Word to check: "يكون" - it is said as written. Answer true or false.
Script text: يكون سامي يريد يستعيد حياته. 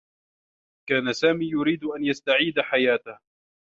false